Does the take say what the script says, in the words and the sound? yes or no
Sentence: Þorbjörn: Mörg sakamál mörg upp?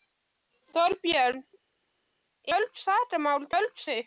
yes